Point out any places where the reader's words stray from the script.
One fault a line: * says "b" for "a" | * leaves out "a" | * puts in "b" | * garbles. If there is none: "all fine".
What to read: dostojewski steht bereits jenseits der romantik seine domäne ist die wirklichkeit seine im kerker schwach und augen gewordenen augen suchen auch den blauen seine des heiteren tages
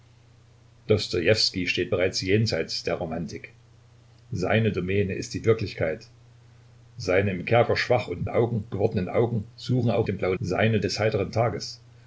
all fine